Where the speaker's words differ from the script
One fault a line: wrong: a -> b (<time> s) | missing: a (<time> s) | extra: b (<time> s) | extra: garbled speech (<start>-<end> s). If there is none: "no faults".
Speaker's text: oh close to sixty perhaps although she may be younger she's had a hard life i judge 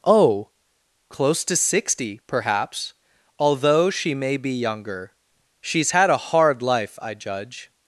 no faults